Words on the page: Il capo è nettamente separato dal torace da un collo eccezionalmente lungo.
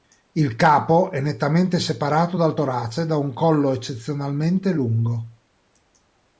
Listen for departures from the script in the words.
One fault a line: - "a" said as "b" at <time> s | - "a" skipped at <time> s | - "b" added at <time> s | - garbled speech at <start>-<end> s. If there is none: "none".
none